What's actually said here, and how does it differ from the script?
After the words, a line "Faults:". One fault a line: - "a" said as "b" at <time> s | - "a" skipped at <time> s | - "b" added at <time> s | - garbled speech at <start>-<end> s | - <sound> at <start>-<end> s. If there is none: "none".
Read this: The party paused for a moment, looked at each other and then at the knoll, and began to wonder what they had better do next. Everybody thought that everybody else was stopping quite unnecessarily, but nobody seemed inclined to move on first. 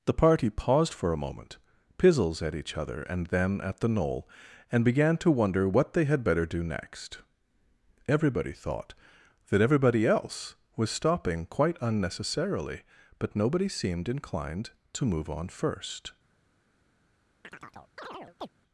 The party paused for a moment, pizzles at each other and then at the knoll, and began to wonder what they had better do next. Everybody thought that everybody else was stopping quite unnecessarily, but nobody seemed inclined to move on first.
Faults:
- "looked" said as "pizzles" at 2.0 s
- chirp at 17.4-18.5 s